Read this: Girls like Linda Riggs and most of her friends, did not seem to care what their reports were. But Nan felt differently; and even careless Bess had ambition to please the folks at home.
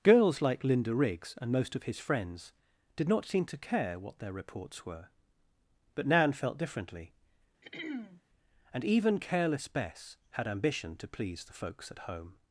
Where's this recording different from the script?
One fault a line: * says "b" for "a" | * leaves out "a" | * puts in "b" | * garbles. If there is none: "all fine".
* says "his" for "her"